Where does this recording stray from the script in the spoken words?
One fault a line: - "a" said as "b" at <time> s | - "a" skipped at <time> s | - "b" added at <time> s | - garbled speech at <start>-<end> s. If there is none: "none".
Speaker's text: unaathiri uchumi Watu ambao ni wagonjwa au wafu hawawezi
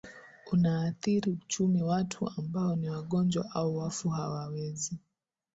none